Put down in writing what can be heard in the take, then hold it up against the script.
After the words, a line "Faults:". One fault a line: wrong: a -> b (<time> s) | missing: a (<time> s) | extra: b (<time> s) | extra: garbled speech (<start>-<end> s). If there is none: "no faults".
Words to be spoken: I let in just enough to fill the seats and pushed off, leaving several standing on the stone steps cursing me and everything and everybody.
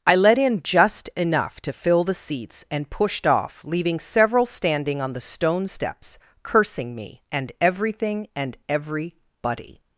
I let in just enough to fill the seats and pushed off, leaving several standing on the stone steps cursing me and everything and everybody.
Faults:
no faults